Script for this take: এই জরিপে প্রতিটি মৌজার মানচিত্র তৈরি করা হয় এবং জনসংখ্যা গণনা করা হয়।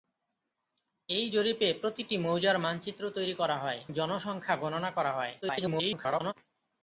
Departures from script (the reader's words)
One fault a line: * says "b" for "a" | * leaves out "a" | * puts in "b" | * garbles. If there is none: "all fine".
* leaves out "এবং"
* garbles